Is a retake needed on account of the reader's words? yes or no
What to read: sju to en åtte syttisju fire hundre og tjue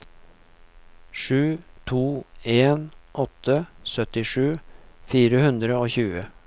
no